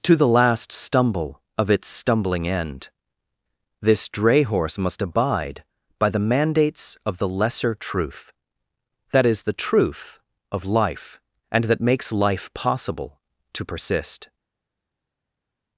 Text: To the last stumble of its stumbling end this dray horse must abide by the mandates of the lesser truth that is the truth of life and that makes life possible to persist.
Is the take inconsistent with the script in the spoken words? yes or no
no